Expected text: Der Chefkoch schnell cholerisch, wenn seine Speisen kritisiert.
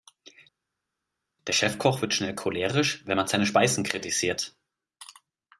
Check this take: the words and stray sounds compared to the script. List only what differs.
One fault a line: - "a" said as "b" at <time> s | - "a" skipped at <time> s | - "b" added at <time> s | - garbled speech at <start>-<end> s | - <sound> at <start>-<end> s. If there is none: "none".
- "wird" added at 2.0 s
- "man" added at 3.2 s